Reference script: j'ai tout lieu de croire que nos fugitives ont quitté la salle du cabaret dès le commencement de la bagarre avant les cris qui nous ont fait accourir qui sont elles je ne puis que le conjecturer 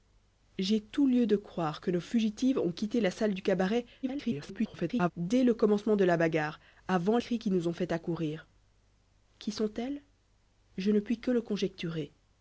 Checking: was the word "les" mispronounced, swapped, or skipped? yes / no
yes